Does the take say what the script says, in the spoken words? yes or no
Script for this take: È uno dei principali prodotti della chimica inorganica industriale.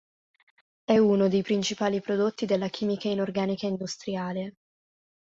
yes